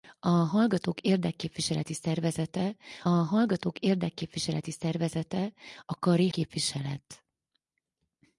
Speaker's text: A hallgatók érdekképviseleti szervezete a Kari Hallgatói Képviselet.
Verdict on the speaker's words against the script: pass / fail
fail